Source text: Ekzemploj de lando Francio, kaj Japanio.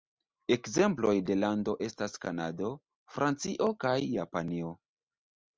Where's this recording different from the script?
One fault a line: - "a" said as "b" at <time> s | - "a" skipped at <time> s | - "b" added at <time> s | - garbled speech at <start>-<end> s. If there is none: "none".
- "estas Kanado" added at 1.9 s